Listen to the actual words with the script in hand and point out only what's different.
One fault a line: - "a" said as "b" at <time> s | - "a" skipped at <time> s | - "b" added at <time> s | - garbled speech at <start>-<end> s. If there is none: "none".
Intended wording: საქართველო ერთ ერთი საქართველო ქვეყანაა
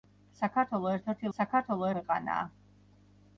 none